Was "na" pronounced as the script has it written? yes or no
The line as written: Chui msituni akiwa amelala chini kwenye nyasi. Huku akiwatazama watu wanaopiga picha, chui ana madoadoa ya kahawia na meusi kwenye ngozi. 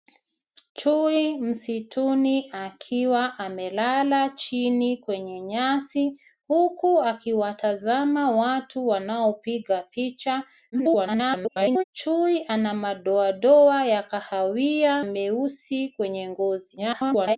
no